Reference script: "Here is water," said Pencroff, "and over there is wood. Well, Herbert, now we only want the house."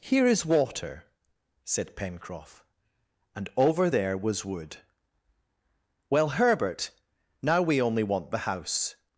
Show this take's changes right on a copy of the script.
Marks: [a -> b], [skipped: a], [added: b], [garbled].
"Here is water," said Pencroff, "and over there [is -> was] wood. Well, Herbert, now we only want the house."